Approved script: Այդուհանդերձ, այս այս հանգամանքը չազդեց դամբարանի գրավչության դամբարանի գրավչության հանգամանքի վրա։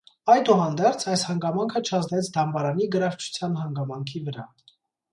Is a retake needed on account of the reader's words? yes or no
yes